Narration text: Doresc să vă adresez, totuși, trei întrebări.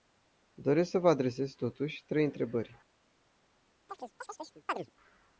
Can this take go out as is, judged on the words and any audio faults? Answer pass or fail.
fail